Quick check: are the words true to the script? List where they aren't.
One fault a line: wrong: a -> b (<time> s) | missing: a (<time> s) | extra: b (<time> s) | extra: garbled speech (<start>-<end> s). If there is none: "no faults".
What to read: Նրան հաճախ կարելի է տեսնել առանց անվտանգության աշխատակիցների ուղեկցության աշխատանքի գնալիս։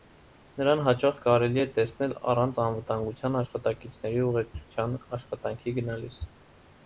no faults